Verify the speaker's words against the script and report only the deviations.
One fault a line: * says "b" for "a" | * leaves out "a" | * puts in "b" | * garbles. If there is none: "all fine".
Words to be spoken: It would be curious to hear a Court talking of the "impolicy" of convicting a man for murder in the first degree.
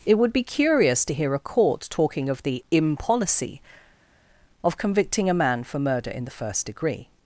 all fine